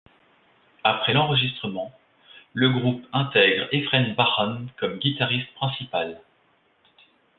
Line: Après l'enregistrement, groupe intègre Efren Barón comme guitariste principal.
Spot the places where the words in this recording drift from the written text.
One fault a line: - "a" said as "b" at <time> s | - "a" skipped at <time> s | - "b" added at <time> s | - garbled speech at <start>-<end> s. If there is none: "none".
- "le" added at 2.5 s